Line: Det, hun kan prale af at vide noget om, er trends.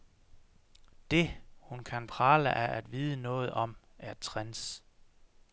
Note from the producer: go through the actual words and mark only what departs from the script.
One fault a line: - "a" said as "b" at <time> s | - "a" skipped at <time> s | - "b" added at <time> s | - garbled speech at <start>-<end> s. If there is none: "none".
none